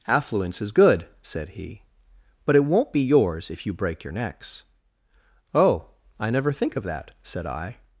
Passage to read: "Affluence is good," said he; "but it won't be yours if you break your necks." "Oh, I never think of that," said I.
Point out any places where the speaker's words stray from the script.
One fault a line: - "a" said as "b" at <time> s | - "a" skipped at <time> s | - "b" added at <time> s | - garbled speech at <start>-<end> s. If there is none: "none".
none